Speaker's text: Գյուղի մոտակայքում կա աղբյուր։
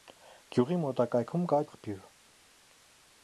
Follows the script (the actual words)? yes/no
yes